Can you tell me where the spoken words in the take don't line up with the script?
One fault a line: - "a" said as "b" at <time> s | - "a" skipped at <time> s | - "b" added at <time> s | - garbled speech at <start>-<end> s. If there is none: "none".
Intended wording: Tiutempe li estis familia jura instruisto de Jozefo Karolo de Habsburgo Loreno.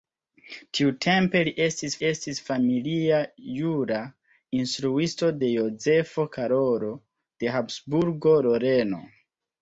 - "estis" added at 2.1 s